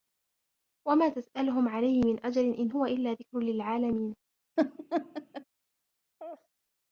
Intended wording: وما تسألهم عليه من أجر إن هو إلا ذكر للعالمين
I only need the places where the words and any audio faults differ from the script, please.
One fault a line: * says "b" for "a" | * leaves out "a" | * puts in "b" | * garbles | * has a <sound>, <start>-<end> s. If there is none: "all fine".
* has a laugh, 4.6-5.4 s
* has a laugh, 6.2-6.5 s